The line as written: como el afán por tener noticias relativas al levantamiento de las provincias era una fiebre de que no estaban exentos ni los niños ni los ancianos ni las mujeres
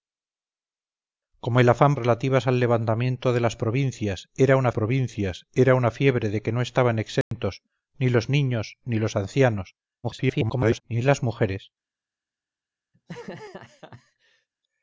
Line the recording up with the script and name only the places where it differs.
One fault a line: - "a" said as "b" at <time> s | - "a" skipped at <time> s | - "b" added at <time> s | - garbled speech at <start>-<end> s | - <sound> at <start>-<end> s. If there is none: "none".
- "por tener noticias" skipped at 1.9 s
- "provincias era una" added at 4.7 s
- dropout at 7.2-7.3 s
- garbled speech at 10.0-10.8 s
- laugh at 12.9-14.5 s